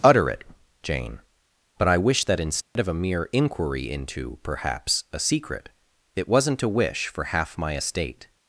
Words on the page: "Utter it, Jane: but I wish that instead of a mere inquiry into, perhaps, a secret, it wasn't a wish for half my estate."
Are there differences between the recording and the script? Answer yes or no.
no